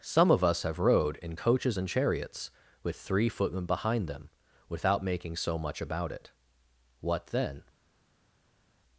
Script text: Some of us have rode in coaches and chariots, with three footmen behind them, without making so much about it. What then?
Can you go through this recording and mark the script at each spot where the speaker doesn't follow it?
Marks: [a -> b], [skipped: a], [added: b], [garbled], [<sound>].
Some of us have rode in coaches and chariots, with three footmen behind them, without making so much about it. What then?